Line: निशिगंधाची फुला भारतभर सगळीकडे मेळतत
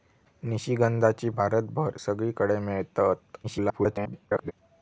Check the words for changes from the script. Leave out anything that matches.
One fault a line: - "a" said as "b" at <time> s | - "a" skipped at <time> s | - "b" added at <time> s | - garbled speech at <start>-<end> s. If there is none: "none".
- "फुला" skipped at 1.3 s
- garbled speech at 3.4-4.5 s